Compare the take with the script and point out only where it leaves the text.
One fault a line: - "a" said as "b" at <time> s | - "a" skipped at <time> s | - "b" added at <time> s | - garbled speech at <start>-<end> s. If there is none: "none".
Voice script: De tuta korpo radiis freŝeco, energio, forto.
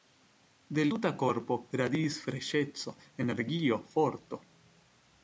none